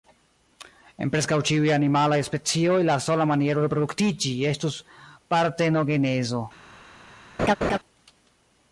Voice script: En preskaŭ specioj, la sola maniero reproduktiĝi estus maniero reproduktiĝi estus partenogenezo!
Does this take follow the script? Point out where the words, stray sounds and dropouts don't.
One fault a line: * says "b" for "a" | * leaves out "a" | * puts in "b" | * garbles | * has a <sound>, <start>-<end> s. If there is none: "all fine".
* puts in "ĉiuj animalaj"
* leaves out "maniero reproduktiĝi estus"
* has a laugh, 7.4-7.8 s